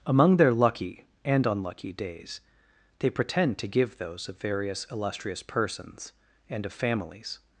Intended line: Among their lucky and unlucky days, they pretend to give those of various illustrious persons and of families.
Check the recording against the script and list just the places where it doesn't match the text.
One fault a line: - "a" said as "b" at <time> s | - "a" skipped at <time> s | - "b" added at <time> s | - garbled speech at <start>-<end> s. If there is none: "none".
none